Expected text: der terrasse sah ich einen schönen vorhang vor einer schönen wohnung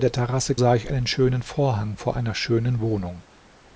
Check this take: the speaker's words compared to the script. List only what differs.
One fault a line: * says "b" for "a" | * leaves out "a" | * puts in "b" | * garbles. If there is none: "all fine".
all fine